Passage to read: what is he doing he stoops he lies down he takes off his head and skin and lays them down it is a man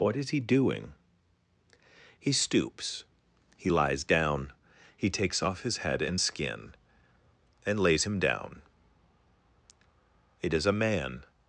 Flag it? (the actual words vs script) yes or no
yes